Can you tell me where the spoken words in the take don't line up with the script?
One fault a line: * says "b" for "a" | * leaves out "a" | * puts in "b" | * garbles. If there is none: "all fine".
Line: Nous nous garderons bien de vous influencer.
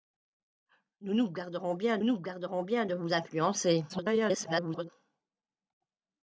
* puts in "nous garderons bien"
* garbles